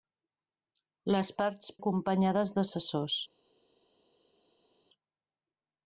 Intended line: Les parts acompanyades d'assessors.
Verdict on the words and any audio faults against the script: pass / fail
pass